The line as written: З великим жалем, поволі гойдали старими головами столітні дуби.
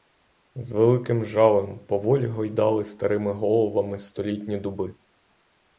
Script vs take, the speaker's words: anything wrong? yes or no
no